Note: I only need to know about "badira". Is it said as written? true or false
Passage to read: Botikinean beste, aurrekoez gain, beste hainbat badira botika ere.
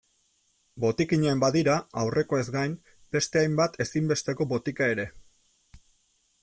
false